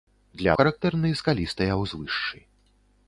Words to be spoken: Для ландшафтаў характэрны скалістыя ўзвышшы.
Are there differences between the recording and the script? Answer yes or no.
yes